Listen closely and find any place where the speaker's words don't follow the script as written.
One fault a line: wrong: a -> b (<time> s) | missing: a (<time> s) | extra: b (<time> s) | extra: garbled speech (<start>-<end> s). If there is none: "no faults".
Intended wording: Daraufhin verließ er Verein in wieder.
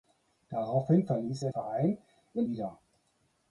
no faults